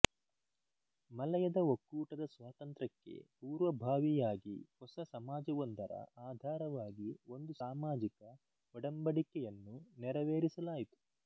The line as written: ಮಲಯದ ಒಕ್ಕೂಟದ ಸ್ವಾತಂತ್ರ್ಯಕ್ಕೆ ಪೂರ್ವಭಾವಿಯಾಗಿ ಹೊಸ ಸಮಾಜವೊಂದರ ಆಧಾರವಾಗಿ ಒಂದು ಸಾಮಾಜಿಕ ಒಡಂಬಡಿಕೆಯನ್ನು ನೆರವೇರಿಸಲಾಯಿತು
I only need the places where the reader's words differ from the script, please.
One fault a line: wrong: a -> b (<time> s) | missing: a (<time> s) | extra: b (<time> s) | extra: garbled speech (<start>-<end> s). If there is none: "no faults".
no faults